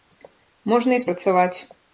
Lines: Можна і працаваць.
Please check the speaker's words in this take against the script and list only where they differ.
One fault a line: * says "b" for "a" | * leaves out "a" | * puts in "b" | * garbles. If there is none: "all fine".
all fine